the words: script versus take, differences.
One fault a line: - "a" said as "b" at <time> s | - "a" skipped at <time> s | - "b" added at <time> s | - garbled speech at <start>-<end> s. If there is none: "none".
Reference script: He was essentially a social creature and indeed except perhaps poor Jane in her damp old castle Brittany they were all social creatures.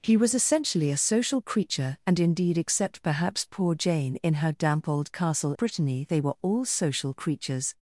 none